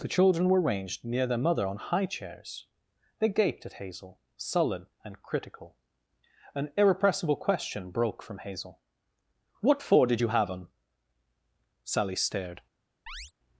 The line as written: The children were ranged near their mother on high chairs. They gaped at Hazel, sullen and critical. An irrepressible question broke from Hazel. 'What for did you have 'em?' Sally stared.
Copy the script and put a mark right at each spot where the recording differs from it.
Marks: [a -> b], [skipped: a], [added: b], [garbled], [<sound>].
The children were ranged near their mother on high chairs. They gaped at Hazel, sullen and critical. An irrepressible question broke from Hazel. 'What for did you have 'em?' Sally stared. [chirp]